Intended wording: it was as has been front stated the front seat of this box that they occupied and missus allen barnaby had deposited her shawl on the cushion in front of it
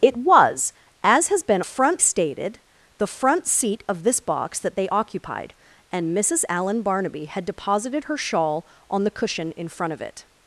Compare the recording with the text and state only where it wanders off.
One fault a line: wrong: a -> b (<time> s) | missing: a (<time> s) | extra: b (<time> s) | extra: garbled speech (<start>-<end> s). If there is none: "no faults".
no faults